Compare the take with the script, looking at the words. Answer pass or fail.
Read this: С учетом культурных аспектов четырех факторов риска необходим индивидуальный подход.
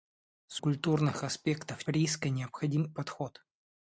fail